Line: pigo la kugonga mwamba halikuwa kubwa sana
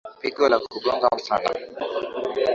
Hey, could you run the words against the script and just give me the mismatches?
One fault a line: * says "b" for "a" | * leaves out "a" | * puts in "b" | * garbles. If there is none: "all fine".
* leaves out "mwamba halikuwa kubwa"